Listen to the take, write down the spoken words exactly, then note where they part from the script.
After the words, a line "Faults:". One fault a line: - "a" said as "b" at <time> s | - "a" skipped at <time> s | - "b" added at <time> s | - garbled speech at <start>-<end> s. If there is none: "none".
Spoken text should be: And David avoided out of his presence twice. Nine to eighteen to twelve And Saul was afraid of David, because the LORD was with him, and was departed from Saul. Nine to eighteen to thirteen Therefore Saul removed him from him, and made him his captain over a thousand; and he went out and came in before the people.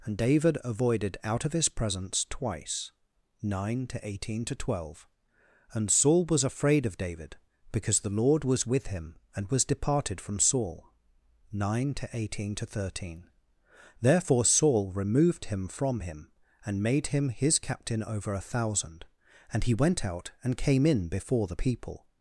And David avoided out of his presence twice. Nine to eighteen to twelve And Saul was afraid of David, because the LORD was with him, and was departed from Saul. Nine to eighteen to thirteen Therefore Saul removed him from him, and made him his captain over a thousand; and he went out and came in before the people.
Faults:
none